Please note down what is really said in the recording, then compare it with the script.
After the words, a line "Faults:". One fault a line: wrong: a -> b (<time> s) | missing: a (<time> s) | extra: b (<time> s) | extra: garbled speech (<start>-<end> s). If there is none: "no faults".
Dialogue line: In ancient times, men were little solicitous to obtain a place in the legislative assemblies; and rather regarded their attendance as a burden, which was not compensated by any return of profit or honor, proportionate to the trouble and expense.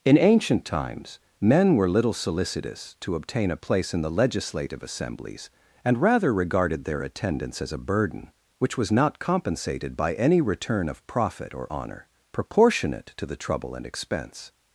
In ancient times, men were little solicitous to obtain a place in the legislative assemblies; and rather regarded their attendance as a burden, which was not compensated by any return of profit or honor, proportionate to the trouble and expense.
Faults:
no faults